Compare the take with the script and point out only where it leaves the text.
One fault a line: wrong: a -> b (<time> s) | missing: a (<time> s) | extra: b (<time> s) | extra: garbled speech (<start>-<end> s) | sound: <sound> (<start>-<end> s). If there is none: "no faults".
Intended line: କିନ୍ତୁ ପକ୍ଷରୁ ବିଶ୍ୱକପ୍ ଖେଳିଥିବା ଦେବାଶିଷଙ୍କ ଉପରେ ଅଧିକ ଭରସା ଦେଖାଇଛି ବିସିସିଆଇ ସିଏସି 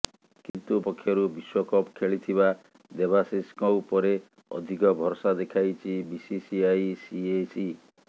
sound: dropout (0.5-0.5 s)